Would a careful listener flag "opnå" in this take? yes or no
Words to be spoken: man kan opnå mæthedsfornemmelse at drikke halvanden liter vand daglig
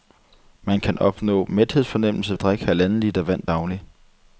no